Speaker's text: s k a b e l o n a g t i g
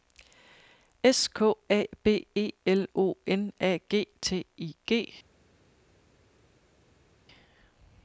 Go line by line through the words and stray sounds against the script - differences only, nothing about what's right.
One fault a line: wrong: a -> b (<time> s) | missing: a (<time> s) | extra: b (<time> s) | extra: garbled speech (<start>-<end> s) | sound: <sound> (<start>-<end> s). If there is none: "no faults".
no faults